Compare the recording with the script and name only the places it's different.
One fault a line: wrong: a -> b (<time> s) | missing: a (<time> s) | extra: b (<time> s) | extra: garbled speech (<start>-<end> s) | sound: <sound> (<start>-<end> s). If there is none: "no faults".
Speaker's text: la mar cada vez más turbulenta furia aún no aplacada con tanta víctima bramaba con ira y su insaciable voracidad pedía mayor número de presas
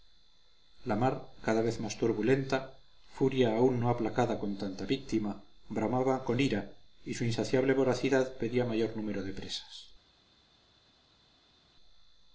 no faults